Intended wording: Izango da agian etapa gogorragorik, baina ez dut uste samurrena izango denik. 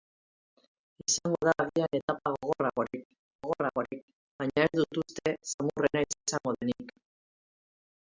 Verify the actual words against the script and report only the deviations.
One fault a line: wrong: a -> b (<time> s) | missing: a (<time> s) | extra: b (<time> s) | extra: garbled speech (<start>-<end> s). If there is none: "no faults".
extra: gogorragorik (3.4 s)